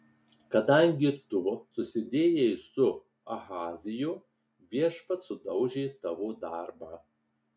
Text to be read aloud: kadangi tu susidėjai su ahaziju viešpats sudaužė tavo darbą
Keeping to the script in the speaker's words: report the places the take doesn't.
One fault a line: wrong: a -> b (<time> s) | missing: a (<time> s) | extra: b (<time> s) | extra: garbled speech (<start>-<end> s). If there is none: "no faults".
no faults